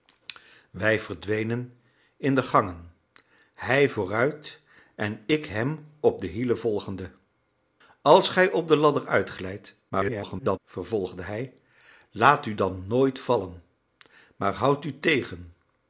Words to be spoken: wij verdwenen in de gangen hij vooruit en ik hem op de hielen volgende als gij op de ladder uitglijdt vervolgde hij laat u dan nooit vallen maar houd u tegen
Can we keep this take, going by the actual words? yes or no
no